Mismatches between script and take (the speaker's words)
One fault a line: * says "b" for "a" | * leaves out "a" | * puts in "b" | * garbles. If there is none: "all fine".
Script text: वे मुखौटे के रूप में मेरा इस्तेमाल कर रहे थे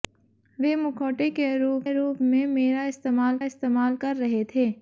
* puts in "रूप"
* puts in "इस्तेमाल"